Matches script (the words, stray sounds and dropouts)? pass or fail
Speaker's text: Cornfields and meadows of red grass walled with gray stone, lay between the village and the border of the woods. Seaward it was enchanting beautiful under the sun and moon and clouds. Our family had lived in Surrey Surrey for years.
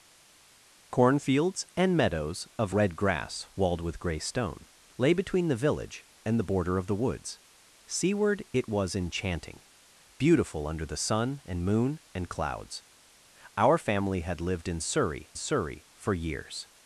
pass